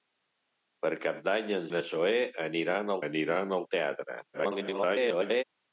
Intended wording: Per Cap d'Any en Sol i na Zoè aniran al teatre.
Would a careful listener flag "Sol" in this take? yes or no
yes